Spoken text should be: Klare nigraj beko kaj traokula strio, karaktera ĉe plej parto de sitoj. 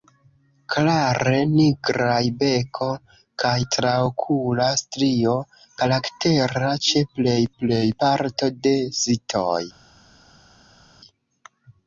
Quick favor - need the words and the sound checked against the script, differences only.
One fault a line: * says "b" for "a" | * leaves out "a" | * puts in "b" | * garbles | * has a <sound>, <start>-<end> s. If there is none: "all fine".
* puts in "plej"